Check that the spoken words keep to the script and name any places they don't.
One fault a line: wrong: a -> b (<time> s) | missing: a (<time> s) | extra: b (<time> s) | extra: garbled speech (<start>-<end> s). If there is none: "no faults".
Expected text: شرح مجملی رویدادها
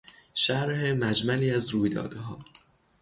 extra: از (1.5 s)